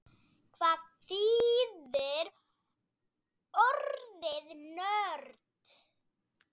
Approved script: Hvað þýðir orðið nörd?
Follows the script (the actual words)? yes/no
yes